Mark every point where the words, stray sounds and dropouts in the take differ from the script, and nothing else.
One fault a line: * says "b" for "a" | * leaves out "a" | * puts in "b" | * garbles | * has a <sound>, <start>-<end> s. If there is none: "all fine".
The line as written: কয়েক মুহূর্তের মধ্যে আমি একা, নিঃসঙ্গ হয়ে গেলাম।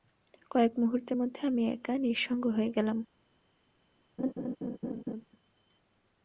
* has a laugh, 4.2-5.3 s